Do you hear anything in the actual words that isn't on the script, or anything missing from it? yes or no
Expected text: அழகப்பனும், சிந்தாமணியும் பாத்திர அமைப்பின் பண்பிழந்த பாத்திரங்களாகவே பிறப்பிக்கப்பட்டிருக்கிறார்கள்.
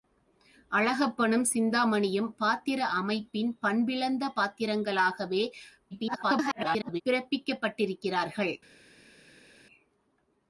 yes